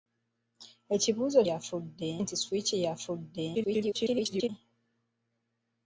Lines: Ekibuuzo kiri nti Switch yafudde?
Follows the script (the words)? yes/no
no